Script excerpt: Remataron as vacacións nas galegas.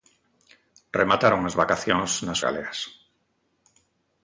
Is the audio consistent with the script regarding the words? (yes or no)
yes